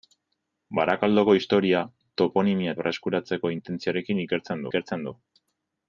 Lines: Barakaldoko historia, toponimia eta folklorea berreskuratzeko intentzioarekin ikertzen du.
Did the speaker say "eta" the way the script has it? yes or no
no